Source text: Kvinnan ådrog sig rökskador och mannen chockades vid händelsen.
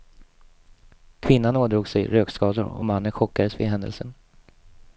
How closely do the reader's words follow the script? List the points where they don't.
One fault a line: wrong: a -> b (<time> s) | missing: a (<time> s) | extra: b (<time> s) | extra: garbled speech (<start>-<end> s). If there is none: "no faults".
no faults